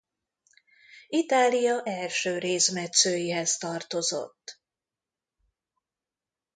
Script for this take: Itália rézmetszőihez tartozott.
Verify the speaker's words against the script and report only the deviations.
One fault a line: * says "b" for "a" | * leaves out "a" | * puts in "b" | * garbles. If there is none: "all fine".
* puts in "első"